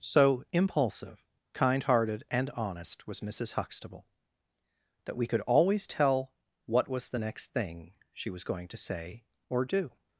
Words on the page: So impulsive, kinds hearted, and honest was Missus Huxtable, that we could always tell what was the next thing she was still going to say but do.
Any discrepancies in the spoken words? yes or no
yes